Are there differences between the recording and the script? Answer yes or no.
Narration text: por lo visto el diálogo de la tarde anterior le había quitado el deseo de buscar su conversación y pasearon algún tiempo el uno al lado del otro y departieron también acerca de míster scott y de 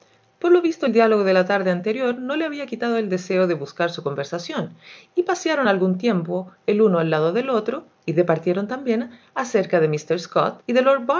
yes